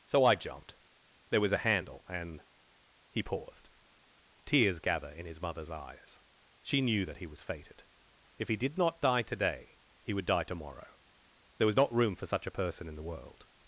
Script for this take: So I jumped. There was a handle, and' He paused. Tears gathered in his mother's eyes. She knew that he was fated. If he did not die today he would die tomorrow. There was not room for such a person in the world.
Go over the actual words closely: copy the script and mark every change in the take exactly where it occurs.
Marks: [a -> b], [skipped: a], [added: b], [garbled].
So I jumped. There was a handle, and' He paused. Tears [gathered -> gather] in his mother's eyes. She knew that he was fated. If he did not die today he would die tomorrow. There was not room for such a person in the world.